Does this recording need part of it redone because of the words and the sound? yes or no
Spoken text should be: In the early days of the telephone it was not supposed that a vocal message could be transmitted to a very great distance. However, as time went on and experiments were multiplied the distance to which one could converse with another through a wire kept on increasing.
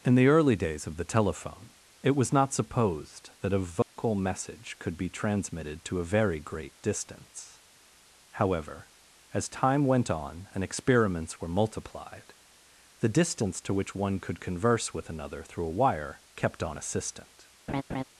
yes